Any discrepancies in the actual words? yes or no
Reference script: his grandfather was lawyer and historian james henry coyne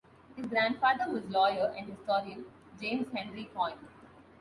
no